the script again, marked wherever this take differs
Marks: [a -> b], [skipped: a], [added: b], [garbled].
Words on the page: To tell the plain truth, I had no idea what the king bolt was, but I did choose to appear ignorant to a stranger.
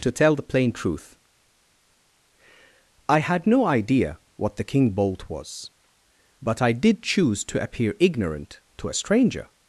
To tell the plain truth, I had no idea what the king bolt was, but I did choose to appear ignorant to a stranger.